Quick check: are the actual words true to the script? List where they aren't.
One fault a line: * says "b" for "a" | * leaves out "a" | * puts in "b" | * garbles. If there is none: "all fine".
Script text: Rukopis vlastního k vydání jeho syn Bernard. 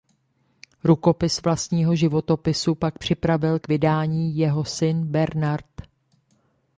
* puts in "životopisu pak připravil"